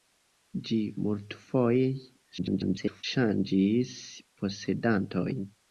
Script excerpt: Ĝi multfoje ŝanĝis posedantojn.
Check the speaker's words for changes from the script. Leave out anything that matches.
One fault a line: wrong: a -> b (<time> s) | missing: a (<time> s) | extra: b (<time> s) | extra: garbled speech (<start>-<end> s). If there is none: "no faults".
extra: garbled speech (2.4-3.0 s)